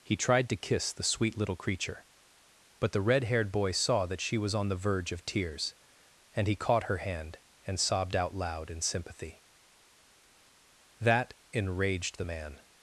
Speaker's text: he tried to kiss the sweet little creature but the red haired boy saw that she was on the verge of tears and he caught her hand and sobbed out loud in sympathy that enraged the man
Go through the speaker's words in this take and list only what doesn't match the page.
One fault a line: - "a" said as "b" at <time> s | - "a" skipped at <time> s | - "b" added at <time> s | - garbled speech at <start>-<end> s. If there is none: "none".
none